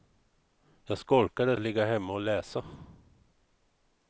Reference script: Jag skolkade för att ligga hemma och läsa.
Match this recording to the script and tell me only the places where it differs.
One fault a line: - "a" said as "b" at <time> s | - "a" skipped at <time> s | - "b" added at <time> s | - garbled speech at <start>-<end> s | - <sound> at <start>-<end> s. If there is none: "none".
- "för" skipped at 1.6 s